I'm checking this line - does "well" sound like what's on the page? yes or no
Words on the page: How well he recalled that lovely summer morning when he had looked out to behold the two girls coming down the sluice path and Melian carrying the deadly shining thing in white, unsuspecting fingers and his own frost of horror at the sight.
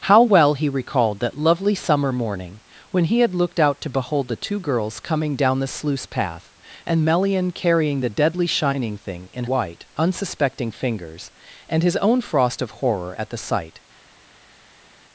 yes